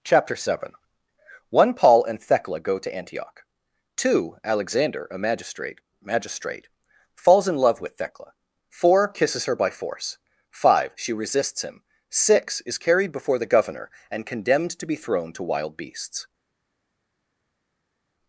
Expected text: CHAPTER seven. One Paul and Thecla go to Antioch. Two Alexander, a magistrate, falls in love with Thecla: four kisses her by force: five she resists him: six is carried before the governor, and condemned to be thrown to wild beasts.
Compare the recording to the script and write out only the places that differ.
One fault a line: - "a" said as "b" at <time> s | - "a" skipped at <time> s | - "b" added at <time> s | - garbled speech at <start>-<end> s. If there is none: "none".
- "magistrate" added at 6.0 s